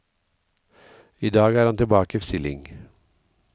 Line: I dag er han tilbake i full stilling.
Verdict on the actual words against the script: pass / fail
fail